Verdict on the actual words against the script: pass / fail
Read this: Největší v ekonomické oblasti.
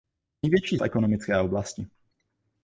pass